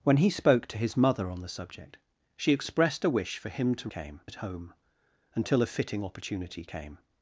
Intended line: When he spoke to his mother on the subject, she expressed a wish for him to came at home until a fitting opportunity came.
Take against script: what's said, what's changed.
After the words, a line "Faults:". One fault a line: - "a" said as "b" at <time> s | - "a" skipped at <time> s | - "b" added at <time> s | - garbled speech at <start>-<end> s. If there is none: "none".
When he spoke to his mother on the subject, she expressed a wish for him to came at home until a fitting opportunity came.
Faults:
none